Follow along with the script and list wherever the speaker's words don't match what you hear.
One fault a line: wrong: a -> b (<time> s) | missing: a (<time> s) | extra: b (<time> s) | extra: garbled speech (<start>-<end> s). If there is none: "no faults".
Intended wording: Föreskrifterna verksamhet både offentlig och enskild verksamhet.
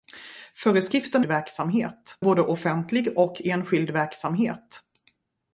no faults